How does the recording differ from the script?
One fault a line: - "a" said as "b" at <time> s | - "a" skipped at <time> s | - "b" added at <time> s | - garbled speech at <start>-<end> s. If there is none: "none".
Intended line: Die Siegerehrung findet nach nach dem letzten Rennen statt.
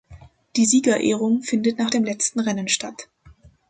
- "nach" skipped at 1.9 s